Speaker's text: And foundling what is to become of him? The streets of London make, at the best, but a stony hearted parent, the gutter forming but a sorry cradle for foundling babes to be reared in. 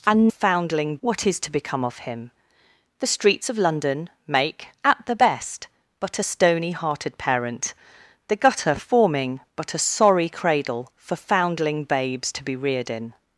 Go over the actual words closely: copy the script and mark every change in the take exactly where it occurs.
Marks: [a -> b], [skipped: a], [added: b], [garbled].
And foundling what is to become of him? The streets of London make, at the best, but a stony hearted parent, the gutter forming but a sorry cradle for foundling babes to be reared in.